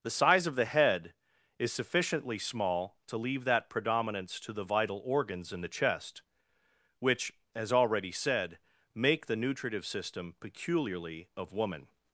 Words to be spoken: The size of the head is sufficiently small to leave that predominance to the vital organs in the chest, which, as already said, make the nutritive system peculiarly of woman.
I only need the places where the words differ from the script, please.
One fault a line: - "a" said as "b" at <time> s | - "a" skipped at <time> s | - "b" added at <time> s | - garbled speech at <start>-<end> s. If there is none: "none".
none